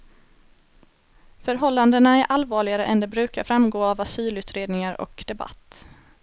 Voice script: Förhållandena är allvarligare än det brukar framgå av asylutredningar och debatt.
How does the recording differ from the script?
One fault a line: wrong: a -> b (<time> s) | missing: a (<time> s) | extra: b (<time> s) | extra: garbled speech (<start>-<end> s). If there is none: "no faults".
no faults